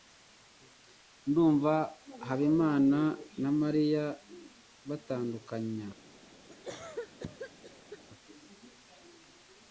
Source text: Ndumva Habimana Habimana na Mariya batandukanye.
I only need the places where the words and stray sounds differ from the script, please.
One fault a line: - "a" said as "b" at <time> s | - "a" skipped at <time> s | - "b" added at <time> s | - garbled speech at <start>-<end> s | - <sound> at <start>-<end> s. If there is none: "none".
- "Habimana" skipped at 3.0 s
- cough at 6.5-8.0 s